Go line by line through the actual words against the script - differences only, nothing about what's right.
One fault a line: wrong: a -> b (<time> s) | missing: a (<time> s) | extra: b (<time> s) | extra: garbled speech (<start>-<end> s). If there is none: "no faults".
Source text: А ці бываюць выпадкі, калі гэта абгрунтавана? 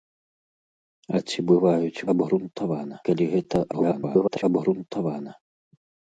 wrong: выпадкі -> абгрунтавана (2.1 s)
extra: garbled speech (3.7-4.4 s)